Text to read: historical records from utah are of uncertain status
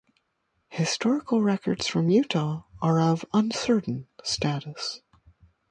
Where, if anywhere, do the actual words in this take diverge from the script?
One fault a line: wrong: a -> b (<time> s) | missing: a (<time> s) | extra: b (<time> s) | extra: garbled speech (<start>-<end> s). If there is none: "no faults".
no faults